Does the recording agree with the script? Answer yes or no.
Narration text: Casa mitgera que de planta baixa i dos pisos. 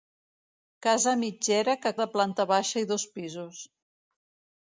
yes